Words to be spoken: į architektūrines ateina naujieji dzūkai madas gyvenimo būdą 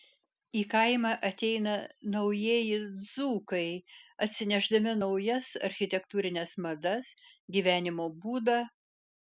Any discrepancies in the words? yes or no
yes